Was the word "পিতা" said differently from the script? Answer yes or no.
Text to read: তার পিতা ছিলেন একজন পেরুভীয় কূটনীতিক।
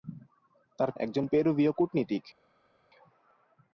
yes